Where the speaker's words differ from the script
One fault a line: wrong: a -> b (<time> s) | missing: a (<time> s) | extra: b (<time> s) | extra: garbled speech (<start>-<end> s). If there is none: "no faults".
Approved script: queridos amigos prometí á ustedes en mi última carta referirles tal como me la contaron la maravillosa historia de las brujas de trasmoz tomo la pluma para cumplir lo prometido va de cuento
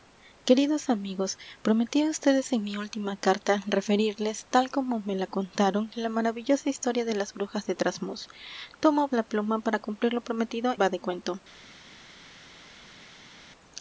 no faults